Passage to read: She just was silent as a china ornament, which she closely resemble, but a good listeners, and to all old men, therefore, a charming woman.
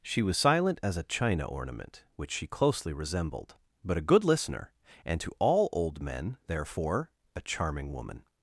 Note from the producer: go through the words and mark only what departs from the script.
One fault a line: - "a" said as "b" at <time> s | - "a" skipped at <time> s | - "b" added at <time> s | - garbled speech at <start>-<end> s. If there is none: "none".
- "just" skipped at 0.2 s
- "resemble" said as "resembled" at 2.9 s
- "listeners" said as "listener" at 4.2 s